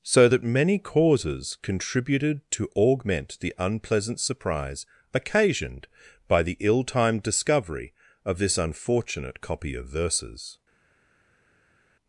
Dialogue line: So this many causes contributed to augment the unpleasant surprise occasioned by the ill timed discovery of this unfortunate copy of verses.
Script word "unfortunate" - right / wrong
right